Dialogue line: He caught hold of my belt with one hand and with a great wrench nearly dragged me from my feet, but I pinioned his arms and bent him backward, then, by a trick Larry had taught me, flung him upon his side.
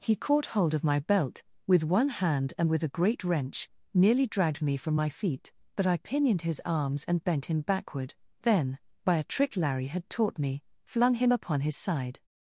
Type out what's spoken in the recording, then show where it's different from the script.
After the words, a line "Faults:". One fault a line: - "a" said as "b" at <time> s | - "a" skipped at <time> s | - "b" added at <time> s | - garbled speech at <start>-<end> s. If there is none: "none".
He caught hold of my belt with one hand and with a great wrench nearly dragged me from my feet, but I pinioned his arms and bent him backward, then, by a trick Larry had taught me, flung him upon his side.
Faults:
none